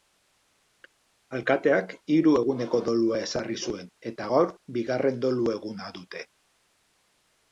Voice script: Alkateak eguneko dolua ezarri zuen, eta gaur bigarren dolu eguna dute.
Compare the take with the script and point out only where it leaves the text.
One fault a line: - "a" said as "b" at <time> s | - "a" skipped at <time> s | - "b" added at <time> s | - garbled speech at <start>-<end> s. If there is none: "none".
- "hiru" added at 2.1 s